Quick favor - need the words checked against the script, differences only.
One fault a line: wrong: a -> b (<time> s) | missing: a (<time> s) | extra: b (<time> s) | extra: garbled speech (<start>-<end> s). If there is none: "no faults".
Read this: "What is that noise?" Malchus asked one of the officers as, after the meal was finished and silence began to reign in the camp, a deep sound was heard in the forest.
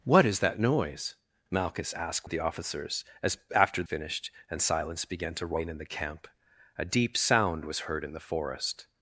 missing: one (2.3 s)
missing: the meal was (3.8 s)